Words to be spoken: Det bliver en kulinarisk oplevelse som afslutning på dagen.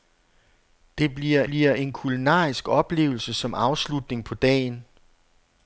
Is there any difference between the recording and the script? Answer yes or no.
yes